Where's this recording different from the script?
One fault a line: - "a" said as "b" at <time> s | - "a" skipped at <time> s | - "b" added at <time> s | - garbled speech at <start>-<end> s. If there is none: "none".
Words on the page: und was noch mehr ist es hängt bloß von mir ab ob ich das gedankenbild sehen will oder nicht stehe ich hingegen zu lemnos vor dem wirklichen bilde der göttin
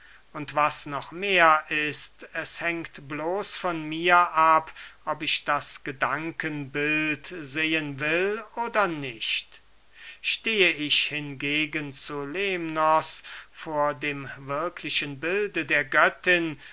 none